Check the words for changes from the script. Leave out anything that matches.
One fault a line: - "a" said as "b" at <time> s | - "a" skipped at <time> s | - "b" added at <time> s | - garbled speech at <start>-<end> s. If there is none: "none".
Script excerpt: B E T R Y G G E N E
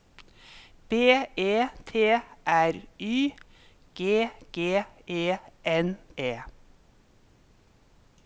none